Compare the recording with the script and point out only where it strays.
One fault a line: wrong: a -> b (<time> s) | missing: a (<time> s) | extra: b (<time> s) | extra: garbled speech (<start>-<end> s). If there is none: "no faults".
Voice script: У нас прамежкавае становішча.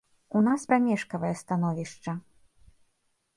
no faults